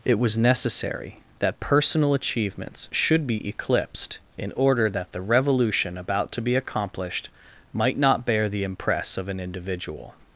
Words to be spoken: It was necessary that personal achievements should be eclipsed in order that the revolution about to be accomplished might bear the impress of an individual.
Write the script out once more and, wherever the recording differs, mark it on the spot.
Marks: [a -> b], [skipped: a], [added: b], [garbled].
It was necessary that personal achievements should be eclipsed in order that the revolution about to be accomplished might [added: not] bear the impress of an individual.